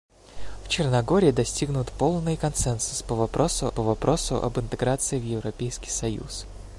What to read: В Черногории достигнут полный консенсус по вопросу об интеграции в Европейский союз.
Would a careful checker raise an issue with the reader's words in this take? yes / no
yes